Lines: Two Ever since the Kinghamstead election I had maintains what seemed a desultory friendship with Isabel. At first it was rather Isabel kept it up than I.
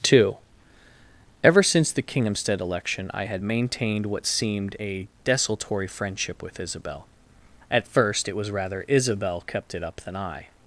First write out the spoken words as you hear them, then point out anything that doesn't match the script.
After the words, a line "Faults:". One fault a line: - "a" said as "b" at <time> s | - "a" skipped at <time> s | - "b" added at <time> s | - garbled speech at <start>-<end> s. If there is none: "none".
Two Ever since the Kinghamstead election I had maintained what seemed a desultory friendship with Isabel. At first it was rather Isabel kept it up than I.
Faults:
- "maintains" said as "maintained" at 3.4 s